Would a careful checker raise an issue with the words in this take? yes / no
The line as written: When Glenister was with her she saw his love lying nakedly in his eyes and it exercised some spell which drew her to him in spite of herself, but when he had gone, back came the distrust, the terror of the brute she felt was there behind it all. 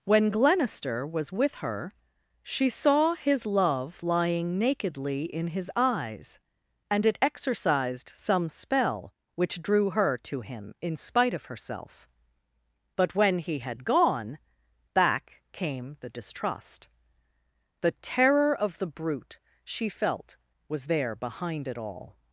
no